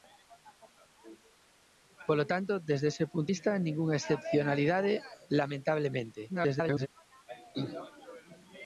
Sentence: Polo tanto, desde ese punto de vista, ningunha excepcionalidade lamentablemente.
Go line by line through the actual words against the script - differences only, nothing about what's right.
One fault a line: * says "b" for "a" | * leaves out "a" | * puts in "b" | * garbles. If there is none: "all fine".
* leaves out "de"
* garbles